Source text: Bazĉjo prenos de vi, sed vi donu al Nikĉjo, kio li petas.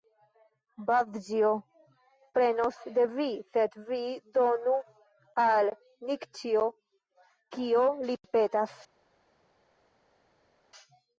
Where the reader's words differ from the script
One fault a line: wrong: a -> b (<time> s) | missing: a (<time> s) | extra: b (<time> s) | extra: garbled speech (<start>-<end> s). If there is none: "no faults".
no faults